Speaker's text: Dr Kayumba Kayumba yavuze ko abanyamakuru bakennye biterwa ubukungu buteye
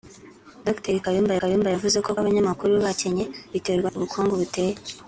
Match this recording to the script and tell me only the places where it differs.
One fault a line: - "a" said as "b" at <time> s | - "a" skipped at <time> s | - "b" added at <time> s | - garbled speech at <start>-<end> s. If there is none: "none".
none